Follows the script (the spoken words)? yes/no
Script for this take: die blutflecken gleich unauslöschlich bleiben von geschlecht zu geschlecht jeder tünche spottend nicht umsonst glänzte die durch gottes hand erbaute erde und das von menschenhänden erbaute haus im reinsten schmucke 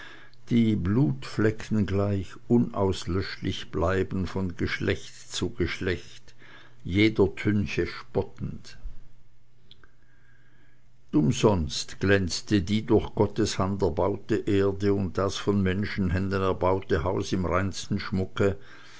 no